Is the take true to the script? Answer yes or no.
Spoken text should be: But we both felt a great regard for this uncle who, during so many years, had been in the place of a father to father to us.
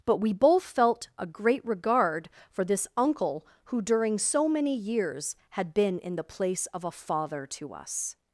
no